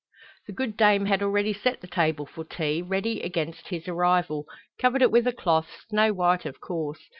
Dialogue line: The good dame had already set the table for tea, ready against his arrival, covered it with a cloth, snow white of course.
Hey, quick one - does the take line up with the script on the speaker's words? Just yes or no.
yes